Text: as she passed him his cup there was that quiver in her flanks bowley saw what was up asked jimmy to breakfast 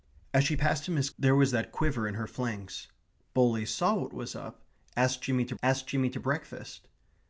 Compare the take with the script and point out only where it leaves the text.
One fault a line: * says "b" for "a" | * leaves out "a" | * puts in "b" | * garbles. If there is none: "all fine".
* leaves out "cup"
* puts in "asked jimmy to"